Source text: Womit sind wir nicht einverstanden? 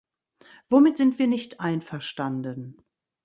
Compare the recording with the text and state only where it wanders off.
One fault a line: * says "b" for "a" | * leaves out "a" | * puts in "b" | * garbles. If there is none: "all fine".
all fine